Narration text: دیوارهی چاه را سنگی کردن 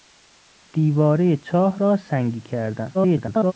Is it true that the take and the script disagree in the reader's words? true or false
true